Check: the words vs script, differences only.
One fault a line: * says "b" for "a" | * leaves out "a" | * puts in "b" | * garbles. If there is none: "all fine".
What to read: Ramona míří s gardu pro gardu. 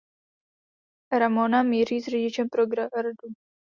* says "řidičem" for "gardu"